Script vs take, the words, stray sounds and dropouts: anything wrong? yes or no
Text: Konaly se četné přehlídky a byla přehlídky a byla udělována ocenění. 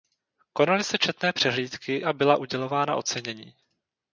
yes